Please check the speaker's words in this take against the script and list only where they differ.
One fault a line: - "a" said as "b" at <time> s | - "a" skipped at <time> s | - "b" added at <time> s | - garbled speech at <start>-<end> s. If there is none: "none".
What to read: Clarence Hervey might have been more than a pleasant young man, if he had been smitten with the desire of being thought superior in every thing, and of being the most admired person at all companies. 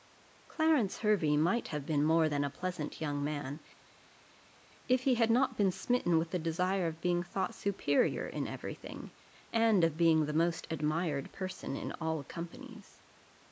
- "not" added at 5.3 s
- "at" said as "in" at 11.8 s